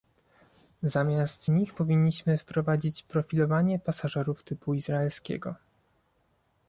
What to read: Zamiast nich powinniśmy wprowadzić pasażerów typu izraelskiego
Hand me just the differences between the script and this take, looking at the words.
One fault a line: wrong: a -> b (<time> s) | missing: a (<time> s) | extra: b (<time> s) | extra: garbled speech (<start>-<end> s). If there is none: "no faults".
extra: profilowanie (3.0 s)